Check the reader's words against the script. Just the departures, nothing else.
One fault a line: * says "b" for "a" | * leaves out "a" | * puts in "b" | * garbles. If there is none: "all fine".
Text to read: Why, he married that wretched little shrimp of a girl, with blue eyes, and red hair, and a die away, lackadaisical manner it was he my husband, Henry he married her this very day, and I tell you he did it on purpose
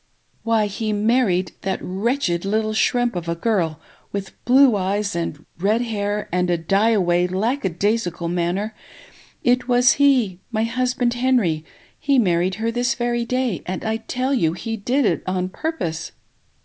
all fine